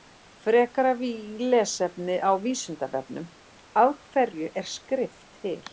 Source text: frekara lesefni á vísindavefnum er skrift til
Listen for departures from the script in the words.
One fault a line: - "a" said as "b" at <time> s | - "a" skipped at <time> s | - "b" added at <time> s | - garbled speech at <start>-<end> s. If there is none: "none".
- "af hverju" added at 3.8 s